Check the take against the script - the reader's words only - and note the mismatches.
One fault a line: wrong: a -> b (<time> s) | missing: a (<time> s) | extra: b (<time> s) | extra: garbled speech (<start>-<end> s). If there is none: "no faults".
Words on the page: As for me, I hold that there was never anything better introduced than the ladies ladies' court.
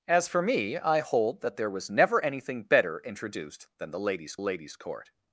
no faults